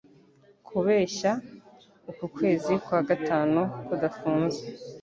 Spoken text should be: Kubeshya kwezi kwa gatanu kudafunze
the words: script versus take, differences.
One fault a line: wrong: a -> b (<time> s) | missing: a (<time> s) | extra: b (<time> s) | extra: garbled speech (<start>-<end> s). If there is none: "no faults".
extra: uku (2.1 s)